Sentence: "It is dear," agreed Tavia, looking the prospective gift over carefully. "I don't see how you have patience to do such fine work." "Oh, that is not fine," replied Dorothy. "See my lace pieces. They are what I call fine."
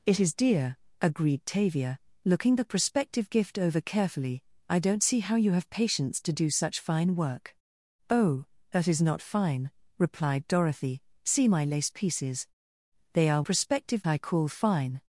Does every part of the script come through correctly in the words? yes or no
no